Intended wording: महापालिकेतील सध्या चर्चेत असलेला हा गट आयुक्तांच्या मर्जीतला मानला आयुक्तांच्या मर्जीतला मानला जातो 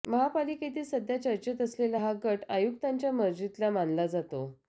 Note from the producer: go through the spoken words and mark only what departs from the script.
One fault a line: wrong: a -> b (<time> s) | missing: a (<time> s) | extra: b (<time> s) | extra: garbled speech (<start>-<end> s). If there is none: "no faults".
missing: आयुक्तांच्या मर्जीतला मानला (4.1 s)